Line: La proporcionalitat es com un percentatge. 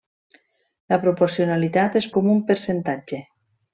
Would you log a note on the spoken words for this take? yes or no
no